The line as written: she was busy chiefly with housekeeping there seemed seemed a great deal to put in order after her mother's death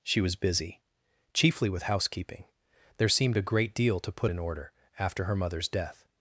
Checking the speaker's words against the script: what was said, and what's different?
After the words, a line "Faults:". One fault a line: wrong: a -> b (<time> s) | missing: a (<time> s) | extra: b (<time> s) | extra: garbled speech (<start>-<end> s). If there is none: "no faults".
she was busy chiefly with housekeeping there seemed a great deal to put in order after her mother's death
Faults:
missing: seemed (3.4 s)